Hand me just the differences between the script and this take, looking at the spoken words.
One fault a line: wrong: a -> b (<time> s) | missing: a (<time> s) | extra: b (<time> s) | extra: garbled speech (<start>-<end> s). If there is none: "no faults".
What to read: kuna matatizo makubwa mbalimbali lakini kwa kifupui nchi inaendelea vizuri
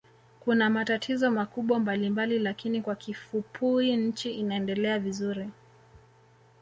no faults